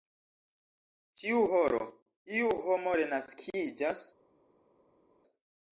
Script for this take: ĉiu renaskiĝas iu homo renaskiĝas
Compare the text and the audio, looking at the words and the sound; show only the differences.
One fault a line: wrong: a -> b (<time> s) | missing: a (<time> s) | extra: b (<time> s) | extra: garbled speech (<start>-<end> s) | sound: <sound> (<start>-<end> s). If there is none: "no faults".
wrong: renaskiĝas -> horo (1.5 s)